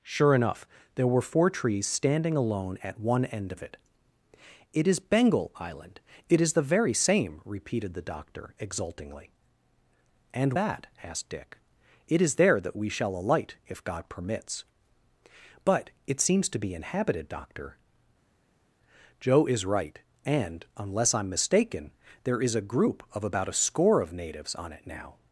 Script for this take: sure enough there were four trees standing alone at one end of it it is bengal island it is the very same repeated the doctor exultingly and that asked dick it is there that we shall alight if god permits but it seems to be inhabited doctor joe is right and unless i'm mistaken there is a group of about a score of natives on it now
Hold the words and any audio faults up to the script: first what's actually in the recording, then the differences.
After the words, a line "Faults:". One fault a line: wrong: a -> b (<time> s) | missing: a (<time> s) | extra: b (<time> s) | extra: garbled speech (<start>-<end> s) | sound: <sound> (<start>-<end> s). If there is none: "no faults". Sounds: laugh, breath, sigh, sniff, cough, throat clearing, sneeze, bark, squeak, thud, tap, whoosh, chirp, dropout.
sure enough there were four trees standing alone at one end of it it is bengal island it is the very same repeated the doctor exultingly and that asked dick it is there that we shall alight if god permits but it seems to be inhabited doctor joe is right and unless i'm mistaken there is a group of about a score of natives on it now
Faults:
no faults